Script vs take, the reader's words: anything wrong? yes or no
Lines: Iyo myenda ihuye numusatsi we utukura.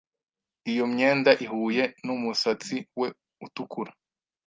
no